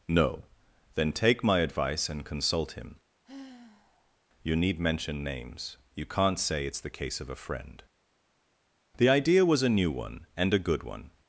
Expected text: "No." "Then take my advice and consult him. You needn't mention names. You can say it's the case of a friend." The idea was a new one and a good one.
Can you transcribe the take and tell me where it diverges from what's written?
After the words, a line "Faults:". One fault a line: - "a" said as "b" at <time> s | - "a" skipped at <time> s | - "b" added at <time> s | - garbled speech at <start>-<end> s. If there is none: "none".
"No." "Then take my advice and consult him. You need mention names. You can't say it's the case of a friend." The idea was a new one and a good one.
Faults:
- "needn't" said as "need" at 4.6 s
- "can" said as "can't" at 6.0 s